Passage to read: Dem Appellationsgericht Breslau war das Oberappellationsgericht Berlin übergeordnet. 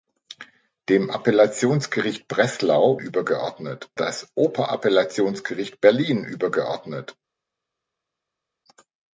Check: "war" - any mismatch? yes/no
yes